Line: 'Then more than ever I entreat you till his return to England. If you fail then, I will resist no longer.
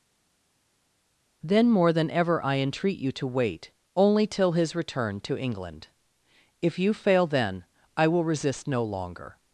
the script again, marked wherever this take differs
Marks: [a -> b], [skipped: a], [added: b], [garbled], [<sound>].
'Then more than ever I entreat you [added: to wait only] till his return to England. If you fail then, I will resist no longer.